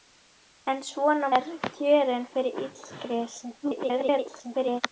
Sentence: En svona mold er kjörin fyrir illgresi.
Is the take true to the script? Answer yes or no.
no